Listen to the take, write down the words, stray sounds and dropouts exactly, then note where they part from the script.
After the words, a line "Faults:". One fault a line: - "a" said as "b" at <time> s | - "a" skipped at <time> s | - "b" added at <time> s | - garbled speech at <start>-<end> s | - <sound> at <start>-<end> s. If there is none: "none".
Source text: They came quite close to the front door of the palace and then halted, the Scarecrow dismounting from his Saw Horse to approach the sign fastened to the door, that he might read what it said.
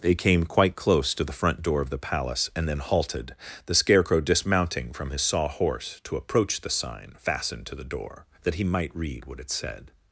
They came quite close to the front door of the palace and then halted, the Scarecrow dismounting from his Saw Horse to approach the sign fastened to the door, that he might read what it said.
Faults:
none